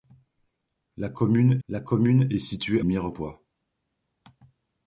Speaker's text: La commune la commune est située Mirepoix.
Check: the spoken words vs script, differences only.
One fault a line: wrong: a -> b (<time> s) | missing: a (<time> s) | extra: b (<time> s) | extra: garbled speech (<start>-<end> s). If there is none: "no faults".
no faults